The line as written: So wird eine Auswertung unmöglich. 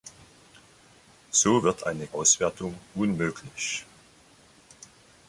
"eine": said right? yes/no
yes